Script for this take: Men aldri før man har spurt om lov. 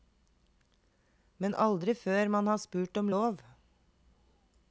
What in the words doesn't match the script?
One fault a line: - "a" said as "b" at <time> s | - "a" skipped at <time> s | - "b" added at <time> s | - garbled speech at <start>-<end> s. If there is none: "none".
none